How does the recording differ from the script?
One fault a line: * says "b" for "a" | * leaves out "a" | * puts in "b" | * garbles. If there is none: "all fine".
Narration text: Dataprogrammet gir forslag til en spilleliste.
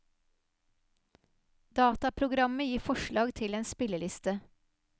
all fine